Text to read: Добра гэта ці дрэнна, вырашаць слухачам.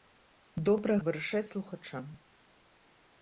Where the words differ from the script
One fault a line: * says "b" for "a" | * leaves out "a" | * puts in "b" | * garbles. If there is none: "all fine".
* leaves out "гэта ці дрэнна"